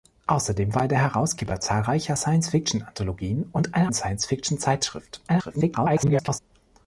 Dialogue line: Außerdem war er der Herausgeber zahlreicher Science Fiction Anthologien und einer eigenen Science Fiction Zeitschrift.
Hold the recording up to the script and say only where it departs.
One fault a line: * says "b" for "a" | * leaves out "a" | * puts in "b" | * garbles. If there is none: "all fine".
* leaves out "eigenen"
* garbles